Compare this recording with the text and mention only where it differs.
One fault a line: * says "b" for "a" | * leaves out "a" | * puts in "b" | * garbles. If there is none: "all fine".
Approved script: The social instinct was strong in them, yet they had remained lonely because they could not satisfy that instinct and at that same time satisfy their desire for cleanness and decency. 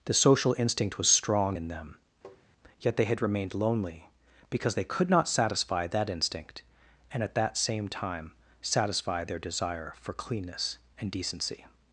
all fine